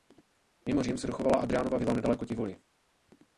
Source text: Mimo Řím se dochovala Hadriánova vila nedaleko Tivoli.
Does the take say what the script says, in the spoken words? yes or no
yes